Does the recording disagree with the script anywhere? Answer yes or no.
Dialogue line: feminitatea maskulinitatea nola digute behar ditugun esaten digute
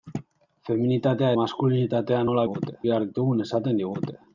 no